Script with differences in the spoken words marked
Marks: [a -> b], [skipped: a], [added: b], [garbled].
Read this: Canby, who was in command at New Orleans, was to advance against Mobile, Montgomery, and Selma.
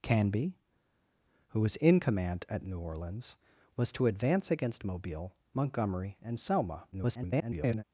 Canby, who was in command at New Orleans, was to advance against Mobile, Montgomery, and Selma. [garbled]